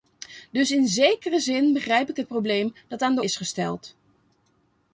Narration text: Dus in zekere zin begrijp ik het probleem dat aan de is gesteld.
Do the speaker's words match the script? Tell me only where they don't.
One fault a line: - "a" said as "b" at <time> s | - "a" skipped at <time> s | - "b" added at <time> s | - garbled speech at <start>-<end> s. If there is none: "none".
none